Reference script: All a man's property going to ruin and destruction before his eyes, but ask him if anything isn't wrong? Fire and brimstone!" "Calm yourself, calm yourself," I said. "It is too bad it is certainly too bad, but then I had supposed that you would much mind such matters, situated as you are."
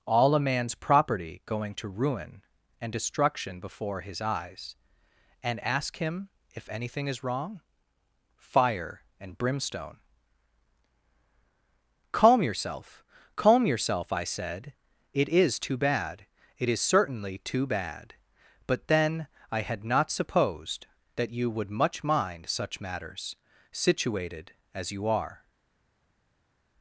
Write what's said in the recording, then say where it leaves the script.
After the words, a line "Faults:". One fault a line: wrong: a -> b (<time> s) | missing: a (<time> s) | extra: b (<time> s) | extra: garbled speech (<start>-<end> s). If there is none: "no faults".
All a man's property going to ruin and destruction before his eyes, and ask him if anything is wrong? Fire and brimstone!" "Calm yourself, calm yourself," I said. "It is too bad it is certainly too bad, but then I had not supposed that you would much mind such matters, situated as you are."
Faults:
wrong: but -> and (5.4 s)
wrong: isn't -> is (7.1 s)
extra: not (19.8 s)